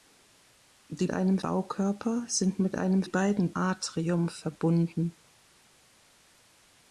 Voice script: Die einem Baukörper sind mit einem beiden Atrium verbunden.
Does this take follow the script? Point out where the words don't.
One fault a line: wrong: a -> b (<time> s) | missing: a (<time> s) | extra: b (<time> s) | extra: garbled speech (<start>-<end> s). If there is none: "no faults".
no faults